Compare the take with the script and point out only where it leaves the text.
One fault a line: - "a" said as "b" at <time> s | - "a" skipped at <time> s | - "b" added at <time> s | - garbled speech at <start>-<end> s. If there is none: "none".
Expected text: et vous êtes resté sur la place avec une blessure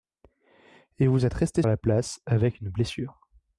- "sur" skipped at 1.6 s